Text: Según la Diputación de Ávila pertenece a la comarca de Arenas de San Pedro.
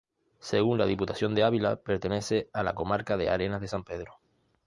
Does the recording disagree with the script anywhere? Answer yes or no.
no